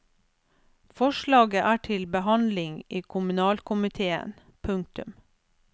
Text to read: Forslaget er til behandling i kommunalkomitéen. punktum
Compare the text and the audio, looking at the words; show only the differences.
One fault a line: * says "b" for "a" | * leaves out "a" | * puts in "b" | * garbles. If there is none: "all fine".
all fine